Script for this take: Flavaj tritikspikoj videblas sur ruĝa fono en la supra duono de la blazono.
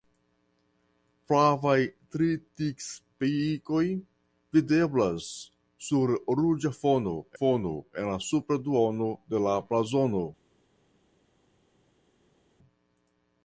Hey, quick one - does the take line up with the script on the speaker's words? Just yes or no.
no